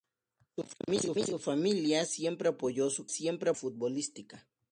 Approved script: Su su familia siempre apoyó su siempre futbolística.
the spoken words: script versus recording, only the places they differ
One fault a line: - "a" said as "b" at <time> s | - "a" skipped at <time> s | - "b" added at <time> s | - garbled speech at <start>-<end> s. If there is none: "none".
none